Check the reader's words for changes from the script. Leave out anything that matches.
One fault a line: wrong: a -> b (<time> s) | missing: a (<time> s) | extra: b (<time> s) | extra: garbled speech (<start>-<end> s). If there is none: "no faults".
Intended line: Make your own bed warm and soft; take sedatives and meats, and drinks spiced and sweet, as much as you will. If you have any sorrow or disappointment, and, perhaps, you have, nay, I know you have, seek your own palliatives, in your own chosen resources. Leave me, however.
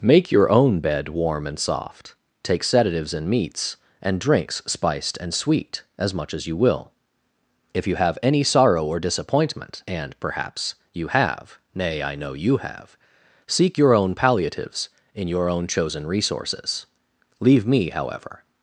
no faults